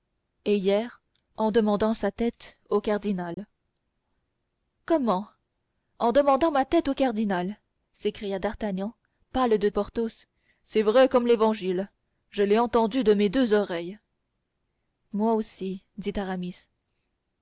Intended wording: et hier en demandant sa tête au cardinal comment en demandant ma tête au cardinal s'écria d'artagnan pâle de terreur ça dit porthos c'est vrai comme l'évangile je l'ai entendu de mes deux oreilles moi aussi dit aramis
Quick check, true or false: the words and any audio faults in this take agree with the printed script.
false